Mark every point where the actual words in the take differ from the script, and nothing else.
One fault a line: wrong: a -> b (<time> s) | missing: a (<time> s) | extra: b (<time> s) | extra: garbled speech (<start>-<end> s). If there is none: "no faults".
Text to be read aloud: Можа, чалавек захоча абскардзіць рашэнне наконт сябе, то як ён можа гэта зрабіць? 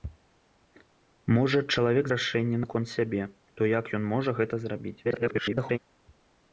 missing: захоча абскардзіць (2.0 s)
extra: garbled speech (5.0-5.8 s)